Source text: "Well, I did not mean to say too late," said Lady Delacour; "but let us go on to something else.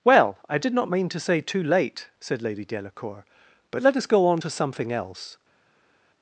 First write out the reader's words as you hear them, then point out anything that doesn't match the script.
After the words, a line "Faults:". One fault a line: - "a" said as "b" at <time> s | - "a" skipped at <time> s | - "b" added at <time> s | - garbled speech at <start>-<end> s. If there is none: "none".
"Well, I did not mean to say too late," said Lady Delacour; "but let us go on to something else.
Faults:
none